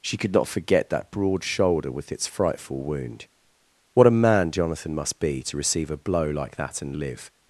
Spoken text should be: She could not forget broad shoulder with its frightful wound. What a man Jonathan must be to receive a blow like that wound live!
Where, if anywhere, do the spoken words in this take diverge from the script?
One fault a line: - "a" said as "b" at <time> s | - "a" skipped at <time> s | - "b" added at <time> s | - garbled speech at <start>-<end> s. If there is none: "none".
- "that" added at 0.9 s
- "wound" said as "and" at 6.8 s